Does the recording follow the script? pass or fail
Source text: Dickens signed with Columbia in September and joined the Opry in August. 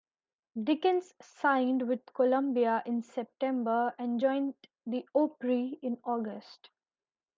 pass